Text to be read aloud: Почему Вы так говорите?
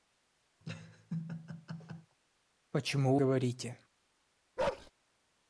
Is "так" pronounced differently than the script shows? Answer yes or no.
yes